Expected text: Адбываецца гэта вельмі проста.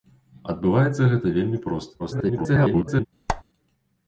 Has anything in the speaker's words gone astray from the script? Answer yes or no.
yes